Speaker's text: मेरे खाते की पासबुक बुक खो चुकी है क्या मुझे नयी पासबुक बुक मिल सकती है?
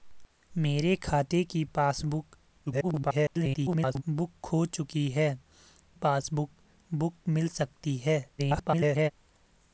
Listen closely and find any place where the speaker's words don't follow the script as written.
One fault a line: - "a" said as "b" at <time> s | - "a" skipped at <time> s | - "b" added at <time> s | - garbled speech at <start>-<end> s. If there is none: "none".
- garbled speech at 2.7-4.0 s
- "क्या मुझे नयी" skipped at 5.4 s
- garbled speech at 8.4-9.1 s